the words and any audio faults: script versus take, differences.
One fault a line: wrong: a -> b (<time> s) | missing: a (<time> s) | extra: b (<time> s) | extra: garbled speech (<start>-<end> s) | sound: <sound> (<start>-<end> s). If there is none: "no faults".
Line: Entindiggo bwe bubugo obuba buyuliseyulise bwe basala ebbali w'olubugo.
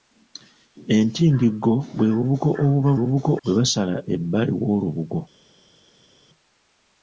wrong: buyuliseyulise -> bubugo (3.0 s)